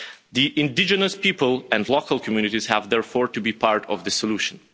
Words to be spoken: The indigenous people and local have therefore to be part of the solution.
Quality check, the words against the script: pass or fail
fail